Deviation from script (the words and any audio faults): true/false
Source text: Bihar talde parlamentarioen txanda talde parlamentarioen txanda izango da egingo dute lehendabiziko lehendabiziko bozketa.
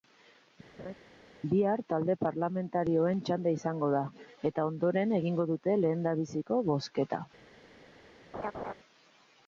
true